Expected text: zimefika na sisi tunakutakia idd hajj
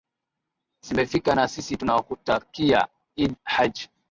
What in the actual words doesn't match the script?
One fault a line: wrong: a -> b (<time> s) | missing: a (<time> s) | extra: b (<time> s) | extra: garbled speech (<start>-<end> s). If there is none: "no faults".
no faults